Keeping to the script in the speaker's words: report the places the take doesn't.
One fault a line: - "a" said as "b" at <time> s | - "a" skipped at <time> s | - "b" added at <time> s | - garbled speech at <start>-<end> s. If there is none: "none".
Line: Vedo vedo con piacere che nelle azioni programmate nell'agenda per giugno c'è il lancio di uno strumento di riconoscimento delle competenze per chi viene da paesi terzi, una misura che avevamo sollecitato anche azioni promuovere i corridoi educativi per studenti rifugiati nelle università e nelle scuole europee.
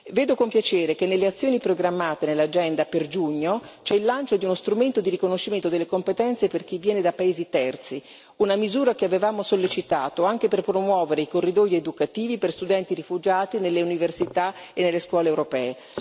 - "vedo" skipped at 0.3 s
- "azioni" said as "per" at 10.5 s